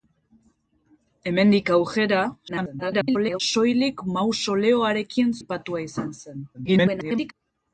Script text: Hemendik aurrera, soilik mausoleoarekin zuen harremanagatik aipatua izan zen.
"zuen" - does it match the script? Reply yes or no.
no